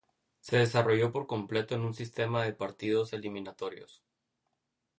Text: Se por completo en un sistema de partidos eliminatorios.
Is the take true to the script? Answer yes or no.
no